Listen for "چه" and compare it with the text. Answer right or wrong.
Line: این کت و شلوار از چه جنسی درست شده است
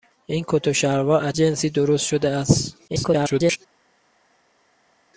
wrong